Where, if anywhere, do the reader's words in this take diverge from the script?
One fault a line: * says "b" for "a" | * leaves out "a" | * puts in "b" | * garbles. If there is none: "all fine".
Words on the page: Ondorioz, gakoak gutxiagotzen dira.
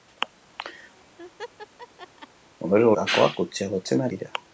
all fine